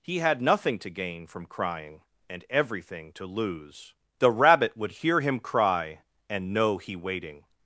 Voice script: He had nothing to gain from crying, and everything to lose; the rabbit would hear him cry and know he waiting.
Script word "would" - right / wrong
right